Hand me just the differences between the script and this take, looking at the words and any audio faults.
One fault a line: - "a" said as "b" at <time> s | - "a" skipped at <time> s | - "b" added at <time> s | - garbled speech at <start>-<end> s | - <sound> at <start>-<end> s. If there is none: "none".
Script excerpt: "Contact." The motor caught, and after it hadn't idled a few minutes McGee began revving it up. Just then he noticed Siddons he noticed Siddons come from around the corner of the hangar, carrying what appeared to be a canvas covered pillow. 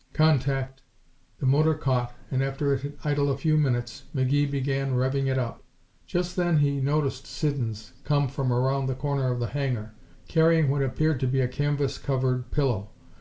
- "hadn't" said as "had" at 2.8 s
- "he noticed Siddons" skipped at 7.9 s